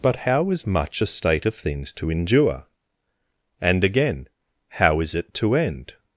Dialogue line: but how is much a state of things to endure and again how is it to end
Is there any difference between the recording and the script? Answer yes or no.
no